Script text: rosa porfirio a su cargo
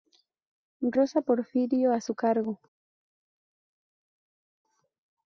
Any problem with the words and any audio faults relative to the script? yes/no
no